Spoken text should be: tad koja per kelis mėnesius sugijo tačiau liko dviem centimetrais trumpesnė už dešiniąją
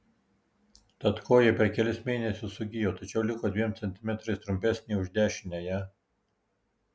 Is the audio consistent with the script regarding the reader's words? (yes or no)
yes